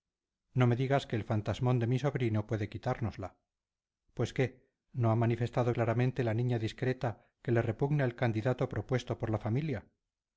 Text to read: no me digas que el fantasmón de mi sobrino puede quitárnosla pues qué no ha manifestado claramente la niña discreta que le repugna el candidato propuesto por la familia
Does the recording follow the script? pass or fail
pass